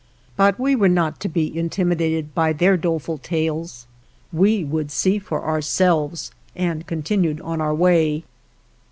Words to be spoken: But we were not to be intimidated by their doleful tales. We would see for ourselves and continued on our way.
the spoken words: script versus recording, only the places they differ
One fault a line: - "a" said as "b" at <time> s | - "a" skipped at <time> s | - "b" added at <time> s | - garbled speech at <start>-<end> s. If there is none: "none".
none